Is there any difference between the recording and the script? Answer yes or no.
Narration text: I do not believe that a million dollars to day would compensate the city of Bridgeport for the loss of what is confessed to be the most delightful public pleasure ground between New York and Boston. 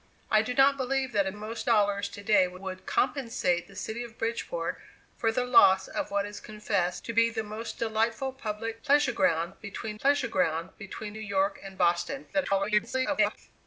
yes